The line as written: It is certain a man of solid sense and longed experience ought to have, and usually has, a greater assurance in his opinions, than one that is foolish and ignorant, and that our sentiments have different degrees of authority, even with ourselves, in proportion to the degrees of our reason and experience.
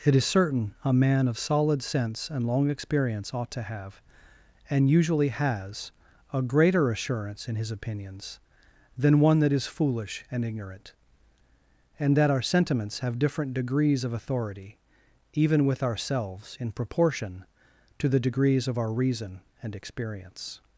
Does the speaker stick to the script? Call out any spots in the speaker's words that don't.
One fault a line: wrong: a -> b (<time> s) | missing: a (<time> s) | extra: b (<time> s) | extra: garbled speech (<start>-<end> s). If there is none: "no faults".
wrong: longed -> long (2.5 s)